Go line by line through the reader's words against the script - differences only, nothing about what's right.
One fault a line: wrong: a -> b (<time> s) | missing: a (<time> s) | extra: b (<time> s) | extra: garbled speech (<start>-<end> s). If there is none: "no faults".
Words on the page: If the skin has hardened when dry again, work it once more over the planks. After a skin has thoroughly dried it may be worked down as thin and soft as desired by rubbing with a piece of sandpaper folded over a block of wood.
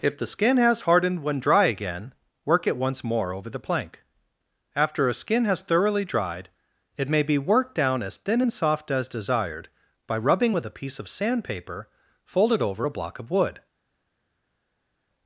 wrong: planks -> plank (3.6 s)